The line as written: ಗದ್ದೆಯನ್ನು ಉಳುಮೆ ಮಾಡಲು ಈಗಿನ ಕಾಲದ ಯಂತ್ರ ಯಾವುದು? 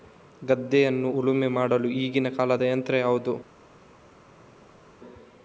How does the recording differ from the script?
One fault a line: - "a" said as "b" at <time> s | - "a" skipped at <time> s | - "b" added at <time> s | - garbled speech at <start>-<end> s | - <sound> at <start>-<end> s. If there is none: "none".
none